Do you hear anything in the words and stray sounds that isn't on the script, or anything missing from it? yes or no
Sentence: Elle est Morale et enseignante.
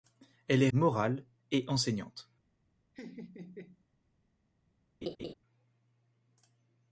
yes